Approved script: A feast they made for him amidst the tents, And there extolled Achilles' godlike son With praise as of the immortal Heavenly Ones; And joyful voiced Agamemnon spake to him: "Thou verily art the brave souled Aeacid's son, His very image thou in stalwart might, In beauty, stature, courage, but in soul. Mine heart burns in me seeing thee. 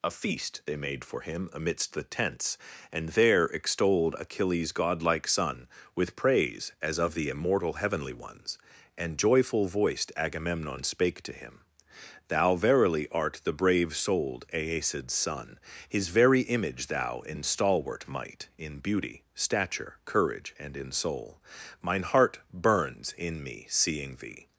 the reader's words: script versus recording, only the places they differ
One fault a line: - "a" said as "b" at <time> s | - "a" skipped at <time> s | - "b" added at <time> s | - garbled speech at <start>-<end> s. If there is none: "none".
- "but" said as "and" at 20.6 s